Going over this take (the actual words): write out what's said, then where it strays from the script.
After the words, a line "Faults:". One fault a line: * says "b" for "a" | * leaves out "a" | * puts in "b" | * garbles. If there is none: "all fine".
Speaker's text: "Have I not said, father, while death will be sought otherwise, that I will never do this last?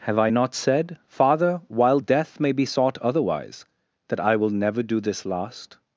"Have I not said, father, while death may be sought otherwise, that I will never do this last?
Faults:
* says "may" for "will"